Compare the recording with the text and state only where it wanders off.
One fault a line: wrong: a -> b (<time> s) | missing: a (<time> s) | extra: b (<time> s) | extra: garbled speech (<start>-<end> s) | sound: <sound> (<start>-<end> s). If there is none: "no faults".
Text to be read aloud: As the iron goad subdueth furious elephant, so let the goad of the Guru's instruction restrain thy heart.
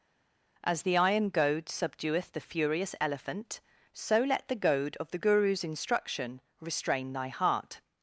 extra: the (2.3 s)